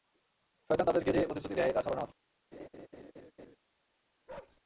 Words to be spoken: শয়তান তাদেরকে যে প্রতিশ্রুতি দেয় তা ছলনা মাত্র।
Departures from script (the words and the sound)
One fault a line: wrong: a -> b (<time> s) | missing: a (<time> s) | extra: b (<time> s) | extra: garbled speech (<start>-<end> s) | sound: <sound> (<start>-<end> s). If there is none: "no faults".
sound: laugh (2.5-3.6 s)
sound: bark (4.3-4.6 s)